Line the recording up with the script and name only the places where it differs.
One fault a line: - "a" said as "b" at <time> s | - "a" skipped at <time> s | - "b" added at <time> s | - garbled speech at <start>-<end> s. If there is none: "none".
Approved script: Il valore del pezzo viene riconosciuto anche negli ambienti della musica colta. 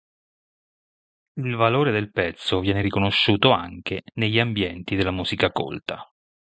none